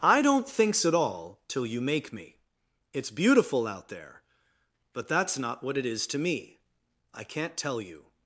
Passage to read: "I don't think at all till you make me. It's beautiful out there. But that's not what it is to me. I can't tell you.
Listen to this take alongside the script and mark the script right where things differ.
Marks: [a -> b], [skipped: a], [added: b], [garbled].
"I don't [think -> thinks] at all till you make me. It's beautiful out there. But that's not what it is to me. I can't tell you.